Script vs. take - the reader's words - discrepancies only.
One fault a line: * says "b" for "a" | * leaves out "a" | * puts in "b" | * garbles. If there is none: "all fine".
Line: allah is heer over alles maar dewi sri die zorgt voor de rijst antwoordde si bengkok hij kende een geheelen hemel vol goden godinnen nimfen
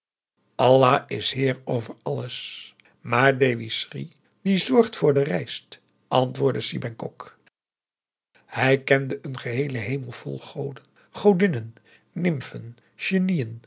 all fine